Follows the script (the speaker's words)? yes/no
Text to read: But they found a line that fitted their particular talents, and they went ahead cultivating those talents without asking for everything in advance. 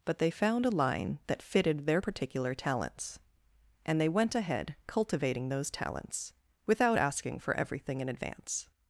yes